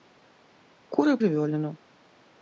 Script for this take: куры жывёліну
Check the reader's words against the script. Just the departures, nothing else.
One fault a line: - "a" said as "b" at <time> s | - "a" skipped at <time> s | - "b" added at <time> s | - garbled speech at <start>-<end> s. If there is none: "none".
none